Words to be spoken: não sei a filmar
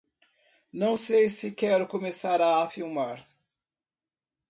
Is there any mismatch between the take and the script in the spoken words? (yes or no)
yes